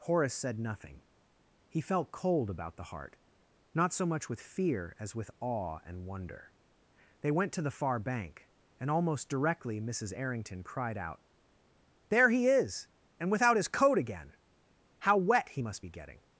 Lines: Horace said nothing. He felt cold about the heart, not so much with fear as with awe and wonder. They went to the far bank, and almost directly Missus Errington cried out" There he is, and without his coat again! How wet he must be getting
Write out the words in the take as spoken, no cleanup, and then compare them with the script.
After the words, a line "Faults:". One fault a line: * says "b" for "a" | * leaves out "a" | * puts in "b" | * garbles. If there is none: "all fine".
Horace said nothing. He felt cold about the heart, not so much with fear as with awe and wonder. They went to the far bank, and almost directly Missus Errington cried out" There he is, and without his coat again! How wet he must be getting
Faults:
all fine